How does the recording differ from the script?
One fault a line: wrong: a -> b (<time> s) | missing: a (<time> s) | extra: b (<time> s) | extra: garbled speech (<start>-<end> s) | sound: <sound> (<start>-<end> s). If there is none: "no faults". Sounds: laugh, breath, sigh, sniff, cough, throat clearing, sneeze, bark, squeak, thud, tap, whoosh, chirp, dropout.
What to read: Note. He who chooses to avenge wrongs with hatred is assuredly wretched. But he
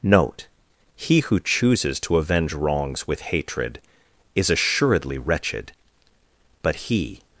no faults